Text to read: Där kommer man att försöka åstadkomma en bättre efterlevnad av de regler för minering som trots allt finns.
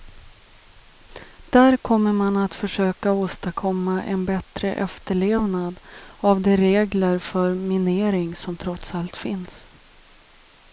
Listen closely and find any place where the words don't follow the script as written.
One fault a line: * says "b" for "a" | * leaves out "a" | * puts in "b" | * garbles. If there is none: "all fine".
all fine